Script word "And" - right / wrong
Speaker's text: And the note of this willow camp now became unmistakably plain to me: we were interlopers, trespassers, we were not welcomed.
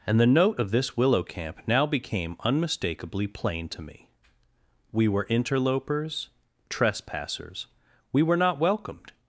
right